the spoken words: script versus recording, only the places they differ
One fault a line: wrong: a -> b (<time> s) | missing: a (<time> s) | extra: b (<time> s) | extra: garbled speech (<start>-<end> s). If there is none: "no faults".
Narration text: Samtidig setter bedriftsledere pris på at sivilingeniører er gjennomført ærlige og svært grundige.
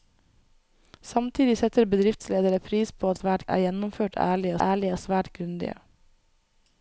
wrong: sivilingeniører -> svært (3.2 s)
extra: ærlige (4.6 s)